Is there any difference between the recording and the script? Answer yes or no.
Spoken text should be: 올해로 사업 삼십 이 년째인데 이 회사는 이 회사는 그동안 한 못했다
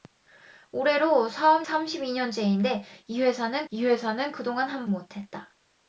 no